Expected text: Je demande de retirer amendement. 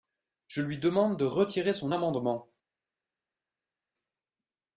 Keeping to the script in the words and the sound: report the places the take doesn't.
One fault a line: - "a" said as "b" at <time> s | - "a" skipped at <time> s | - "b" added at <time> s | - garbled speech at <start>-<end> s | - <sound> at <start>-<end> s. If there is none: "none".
- "lui" added at 0.6 s
- "son" added at 1.8 s